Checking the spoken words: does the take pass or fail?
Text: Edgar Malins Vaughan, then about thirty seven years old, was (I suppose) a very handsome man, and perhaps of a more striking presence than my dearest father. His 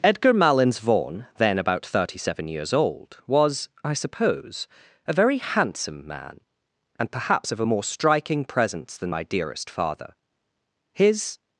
pass